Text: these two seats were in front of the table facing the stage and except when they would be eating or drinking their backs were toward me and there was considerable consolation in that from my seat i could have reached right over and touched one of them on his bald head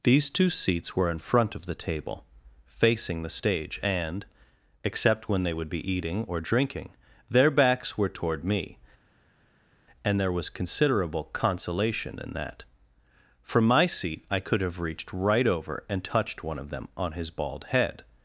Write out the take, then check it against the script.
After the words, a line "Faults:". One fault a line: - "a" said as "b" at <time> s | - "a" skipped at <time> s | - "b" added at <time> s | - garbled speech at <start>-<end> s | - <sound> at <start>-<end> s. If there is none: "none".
these two seats were in front of the table facing the stage and except when they would be eating or drinking their backs were toward me and there was considerable consolation in that from my seat i could have reached right over and touched one of them on his bald head
Faults:
none